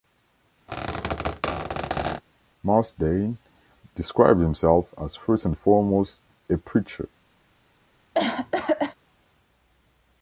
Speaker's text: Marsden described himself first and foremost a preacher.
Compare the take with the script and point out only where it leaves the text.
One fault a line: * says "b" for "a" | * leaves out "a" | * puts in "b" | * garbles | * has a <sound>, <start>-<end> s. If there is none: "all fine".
* has a squeak, 0.7-2.2 s
* puts in "as"
* has a cough, 8.1-8.9 s